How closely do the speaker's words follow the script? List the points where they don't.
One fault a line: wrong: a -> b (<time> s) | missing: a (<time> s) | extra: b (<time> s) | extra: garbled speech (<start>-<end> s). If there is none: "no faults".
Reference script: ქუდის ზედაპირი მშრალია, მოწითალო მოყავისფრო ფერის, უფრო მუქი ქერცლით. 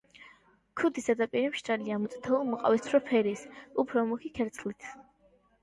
no faults